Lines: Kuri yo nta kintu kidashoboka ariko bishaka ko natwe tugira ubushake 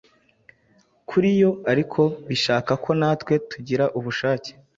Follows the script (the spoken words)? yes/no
no